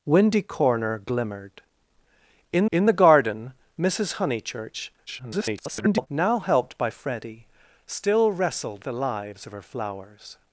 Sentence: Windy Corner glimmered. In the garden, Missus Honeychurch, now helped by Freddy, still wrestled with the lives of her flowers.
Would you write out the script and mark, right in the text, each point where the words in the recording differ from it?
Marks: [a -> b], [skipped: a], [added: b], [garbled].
Windy Corner glimmered. In [added: in] the garden, Missus Honeychurch, [garbled] now helped by Freddy, still wrestled [skipped: with] the lives of her flowers.